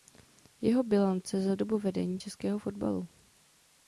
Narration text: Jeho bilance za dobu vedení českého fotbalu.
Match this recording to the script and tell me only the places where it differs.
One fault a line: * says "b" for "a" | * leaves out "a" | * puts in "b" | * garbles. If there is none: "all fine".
all fine